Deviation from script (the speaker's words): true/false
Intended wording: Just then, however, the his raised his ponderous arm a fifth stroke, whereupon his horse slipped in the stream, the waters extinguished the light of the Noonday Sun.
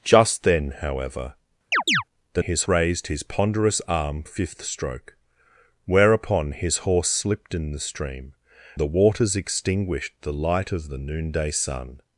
false